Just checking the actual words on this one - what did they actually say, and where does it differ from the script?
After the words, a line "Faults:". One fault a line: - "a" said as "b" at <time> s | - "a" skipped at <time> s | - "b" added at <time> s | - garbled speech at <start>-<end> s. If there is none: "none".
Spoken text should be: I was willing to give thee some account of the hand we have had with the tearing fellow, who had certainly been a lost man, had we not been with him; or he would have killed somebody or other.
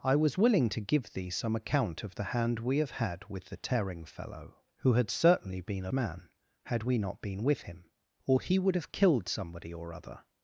I was willing to give thee some account of the hand we have had with the tearing fellow, who had certainly been a man, had we not been with him; or he would have killed somebody or other.
Faults:
- "lost" skipped at 5.9 s